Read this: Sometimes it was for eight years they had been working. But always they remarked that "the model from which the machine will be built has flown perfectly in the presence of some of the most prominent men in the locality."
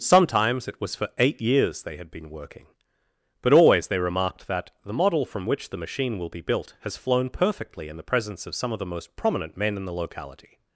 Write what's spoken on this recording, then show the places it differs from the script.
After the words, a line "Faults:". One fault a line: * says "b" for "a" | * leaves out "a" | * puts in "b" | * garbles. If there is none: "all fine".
Sometimes it was for eight years they had been working. But always they remarked that "the model from which the machine will be built has flown perfectly in the presence of some of the most prominent men in the locality."
Faults:
all fine